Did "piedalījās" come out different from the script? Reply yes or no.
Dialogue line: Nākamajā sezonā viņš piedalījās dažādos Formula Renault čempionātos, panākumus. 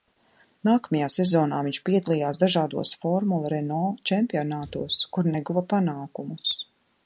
no